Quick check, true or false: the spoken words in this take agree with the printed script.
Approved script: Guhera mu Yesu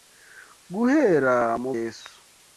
true